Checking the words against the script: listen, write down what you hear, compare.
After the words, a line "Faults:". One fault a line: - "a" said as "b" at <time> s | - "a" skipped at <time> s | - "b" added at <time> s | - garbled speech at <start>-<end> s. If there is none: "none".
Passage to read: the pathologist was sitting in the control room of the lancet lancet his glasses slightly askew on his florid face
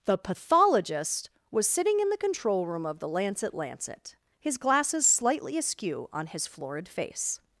the pathologist was sitting in the control room of the lancet lancet his glasses slightly askew on his florid face
Faults:
none